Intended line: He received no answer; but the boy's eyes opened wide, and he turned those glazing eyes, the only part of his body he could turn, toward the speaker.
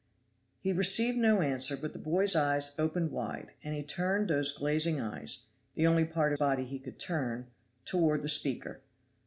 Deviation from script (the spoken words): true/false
true